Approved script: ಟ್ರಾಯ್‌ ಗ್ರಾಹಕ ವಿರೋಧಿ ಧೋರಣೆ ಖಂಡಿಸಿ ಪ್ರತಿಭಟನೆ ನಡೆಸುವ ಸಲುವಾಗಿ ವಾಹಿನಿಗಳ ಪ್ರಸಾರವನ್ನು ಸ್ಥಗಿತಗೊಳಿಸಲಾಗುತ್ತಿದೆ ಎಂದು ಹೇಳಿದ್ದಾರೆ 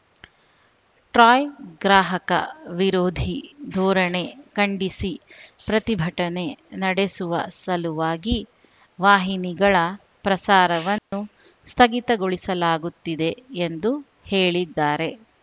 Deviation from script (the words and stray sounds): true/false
true